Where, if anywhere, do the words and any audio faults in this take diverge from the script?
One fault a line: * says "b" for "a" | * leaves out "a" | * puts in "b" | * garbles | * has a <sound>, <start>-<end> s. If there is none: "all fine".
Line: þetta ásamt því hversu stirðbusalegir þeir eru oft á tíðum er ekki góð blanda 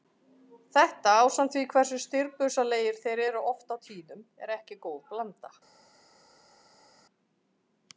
all fine